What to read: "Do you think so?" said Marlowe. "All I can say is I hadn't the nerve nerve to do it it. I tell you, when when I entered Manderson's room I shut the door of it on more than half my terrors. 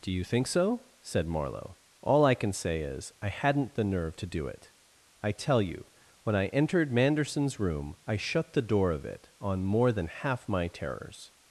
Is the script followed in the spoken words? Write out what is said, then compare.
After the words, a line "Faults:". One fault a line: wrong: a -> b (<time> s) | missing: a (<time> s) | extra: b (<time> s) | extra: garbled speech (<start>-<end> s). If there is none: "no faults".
"Do you think so?" said Marlowe. "All I can say is I hadn't the nerve to do it. I tell you, when I entered Manderson's room I shut the door of it on more than half my terrors.
Faults:
missing: nerve (4.2 s)
missing: it (4.7 s)
missing: when (6.3 s)